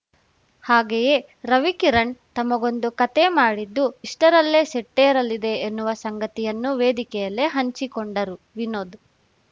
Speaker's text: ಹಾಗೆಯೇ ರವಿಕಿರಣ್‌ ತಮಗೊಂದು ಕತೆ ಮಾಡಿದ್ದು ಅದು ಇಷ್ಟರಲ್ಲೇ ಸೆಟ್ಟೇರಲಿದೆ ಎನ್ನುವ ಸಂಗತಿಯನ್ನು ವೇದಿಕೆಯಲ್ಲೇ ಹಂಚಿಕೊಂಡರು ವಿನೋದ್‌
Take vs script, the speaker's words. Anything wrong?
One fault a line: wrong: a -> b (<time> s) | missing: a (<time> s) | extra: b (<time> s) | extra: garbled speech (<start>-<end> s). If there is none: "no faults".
missing: ಅದು (3.9 s)